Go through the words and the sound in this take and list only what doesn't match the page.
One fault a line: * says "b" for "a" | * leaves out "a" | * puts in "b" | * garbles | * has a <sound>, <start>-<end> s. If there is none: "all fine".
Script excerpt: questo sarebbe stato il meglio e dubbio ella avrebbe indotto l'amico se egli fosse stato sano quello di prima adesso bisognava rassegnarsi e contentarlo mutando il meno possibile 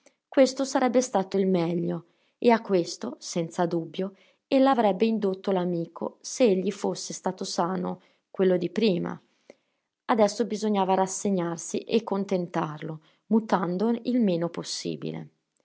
* puts in "a questo senza"